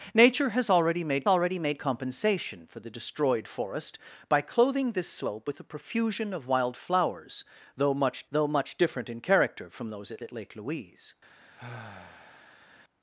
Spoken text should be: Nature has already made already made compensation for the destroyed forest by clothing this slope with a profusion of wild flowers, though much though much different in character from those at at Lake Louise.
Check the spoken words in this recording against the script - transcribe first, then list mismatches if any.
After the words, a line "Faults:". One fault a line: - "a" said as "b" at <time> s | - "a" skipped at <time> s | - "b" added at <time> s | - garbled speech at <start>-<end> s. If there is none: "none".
Nature has already made already made compensation for the destroyed forest by clothing this slope with a profusion of wild flowers, though much though much different in character from those at at Lake Louise.
Faults:
none